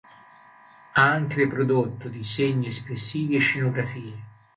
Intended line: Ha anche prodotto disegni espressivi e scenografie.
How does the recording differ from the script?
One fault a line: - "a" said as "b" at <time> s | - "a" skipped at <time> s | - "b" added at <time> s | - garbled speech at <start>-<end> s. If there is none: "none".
none